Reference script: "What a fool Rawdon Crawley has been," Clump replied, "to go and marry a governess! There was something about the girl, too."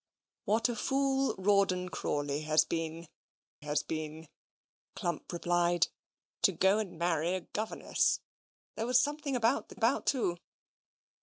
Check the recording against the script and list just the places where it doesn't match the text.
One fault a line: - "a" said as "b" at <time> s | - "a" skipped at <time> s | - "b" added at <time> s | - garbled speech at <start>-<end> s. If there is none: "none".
- "has been" added at 3.6 s
- "girl" said as "about" at 9.7 s